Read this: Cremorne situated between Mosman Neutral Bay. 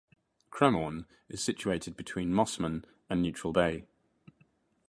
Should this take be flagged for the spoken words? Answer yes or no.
yes